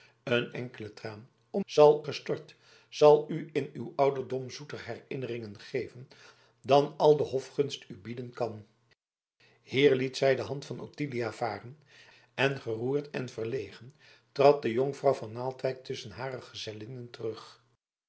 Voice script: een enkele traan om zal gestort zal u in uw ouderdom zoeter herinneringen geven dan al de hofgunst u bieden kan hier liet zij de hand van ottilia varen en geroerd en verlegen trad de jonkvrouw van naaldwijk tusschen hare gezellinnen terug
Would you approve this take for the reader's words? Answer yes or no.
yes